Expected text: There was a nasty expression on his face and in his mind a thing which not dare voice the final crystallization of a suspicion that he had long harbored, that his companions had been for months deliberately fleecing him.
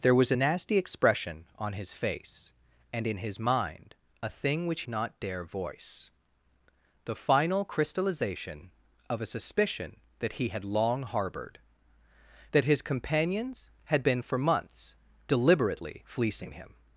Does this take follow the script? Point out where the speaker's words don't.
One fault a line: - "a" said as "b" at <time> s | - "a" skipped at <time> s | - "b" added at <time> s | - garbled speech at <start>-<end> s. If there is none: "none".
none